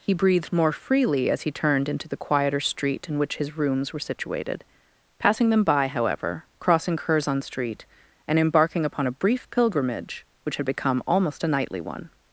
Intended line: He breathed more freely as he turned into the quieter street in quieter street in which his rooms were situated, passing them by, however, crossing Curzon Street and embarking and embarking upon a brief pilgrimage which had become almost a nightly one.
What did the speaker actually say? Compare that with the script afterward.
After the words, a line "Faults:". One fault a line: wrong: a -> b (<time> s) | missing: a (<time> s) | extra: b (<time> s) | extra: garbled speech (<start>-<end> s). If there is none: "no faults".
He breathed more freely as he turned into the quieter street in which his rooms were situated, passing them by, however, crossing Curzon Street and embarking upon a brief pilgrimage which had become almost a nightly one.
Faults:
missing: quieter street in (3.2 s)
missing: and embarking (8.8 s)